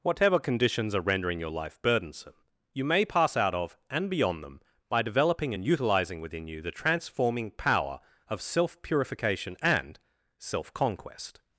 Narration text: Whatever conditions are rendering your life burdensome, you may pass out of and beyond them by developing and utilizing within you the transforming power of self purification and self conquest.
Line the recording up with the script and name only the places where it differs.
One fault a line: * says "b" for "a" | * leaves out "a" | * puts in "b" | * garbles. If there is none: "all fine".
all fine